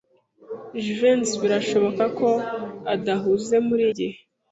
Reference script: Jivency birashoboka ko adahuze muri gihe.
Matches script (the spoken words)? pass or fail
pass